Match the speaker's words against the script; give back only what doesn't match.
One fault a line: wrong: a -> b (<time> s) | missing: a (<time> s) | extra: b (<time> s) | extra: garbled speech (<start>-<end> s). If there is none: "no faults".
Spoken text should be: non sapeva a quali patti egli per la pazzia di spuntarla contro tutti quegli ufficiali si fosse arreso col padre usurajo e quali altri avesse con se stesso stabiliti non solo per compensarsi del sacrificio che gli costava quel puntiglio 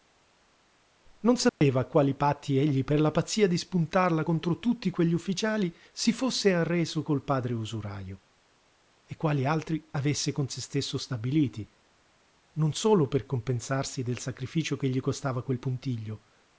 no faults